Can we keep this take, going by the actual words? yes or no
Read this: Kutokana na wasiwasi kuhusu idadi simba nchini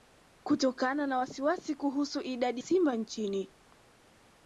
yes